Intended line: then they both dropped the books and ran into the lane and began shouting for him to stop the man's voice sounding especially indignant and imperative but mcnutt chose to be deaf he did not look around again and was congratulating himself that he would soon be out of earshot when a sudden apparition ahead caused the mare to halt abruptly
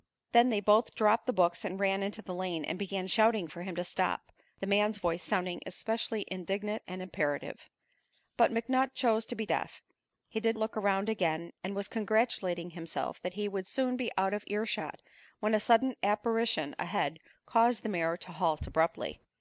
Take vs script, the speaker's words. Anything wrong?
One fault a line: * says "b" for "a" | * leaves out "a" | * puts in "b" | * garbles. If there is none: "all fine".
* leaves out "not"